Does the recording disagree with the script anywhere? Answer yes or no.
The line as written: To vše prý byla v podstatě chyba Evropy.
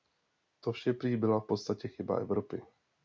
no